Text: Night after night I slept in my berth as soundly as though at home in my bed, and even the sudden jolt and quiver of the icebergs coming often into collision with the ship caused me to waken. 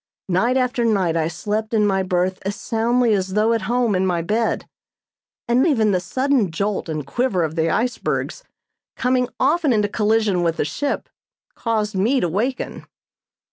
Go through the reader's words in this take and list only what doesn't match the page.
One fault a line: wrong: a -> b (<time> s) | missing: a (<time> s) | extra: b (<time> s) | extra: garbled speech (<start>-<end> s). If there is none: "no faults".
no faults